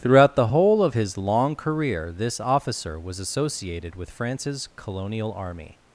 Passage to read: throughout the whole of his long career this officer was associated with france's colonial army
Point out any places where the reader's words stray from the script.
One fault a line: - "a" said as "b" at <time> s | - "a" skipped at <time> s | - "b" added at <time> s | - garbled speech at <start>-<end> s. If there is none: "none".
none